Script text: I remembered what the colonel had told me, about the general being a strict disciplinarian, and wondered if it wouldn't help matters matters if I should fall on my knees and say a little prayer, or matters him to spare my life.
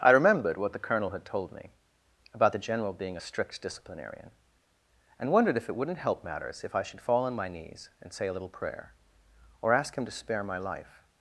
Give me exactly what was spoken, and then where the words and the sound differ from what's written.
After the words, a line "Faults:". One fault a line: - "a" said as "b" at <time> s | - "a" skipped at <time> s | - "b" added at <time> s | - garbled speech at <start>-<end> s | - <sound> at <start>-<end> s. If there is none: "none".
I remembered what the colonel had told me, about the general being a strict disciplinarian, and wondered if it wouldn't help matters if I should fall on my knees and say a little prayer, or ask him to spare my life.
Faults:
- "matters" skipped at 6.6 s
- "matters" said as "ask" at 9.7 s